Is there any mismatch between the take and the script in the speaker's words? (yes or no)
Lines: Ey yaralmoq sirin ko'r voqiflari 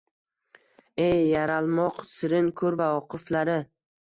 no